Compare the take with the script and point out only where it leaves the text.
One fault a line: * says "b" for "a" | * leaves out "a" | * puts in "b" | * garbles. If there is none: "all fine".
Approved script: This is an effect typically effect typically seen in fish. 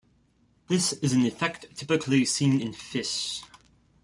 * leaves out "effect typically"